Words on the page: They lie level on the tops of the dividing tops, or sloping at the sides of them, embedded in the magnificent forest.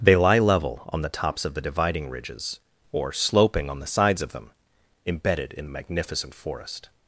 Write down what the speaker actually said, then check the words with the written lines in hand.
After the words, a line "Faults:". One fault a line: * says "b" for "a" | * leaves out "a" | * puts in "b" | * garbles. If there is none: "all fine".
They lie level on the tops of the dividing ridges, or sloping on the sides of them, embedded in the magnificent forest.
Faults:
* says "ridges" for "tops"
* says "on" for "at"